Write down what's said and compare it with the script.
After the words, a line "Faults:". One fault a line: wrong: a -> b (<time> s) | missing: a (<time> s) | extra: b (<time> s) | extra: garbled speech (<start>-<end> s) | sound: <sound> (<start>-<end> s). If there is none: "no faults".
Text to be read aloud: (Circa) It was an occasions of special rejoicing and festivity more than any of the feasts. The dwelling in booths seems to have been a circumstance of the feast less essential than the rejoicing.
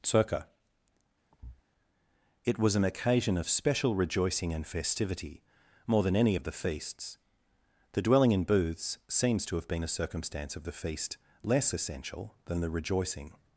(Circa) It was an occasion of special rejoicing and festivity more than any of the feasts. The dwelling in booths seems to have been a circumstance of the feast less essential than the rejoicing.
Faults:
sound: thud (1.3-1.6 s)
wrong: occasions -> occasion (2.8 s)